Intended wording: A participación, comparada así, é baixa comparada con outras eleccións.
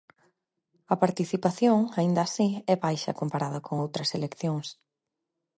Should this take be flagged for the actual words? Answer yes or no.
yes